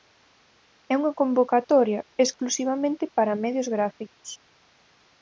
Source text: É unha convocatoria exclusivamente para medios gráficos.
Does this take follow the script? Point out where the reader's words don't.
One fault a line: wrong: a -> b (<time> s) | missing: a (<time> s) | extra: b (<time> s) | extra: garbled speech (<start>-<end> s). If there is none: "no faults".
no faults